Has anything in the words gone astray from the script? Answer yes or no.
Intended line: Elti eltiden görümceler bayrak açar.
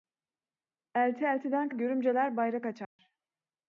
no